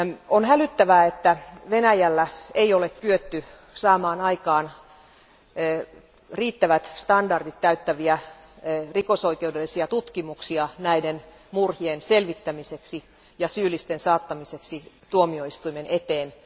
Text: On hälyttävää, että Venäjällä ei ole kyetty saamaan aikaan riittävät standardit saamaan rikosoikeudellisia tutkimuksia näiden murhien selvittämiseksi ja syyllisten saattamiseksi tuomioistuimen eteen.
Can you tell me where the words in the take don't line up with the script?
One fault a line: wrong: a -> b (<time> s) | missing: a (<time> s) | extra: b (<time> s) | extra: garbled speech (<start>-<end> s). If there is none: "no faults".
wrong: saamaan -> täyttäviä (7.6 s)